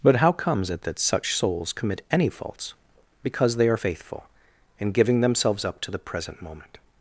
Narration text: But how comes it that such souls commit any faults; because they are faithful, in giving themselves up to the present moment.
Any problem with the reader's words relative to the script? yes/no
no